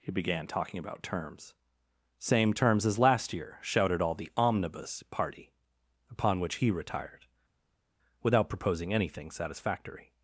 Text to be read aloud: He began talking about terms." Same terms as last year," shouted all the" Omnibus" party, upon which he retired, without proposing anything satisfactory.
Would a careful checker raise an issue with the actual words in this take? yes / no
no